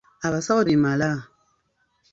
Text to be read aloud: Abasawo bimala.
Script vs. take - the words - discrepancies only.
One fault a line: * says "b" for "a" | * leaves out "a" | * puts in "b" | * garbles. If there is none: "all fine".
all fine